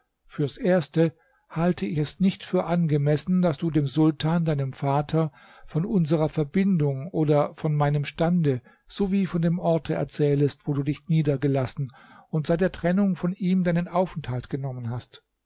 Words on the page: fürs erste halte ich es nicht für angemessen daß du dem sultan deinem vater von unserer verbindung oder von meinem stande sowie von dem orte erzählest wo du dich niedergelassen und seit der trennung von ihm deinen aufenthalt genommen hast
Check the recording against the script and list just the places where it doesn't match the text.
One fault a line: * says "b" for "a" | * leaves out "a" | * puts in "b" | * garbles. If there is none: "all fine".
all fine